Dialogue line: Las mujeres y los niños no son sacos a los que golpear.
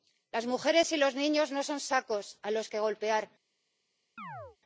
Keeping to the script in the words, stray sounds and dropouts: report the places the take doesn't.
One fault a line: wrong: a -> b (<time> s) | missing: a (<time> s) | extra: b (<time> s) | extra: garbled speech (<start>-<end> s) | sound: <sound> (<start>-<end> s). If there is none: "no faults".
sound: chirp (4.2-4.6 s)